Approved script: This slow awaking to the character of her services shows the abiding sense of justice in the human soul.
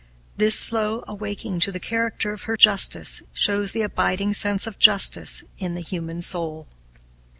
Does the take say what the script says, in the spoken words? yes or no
no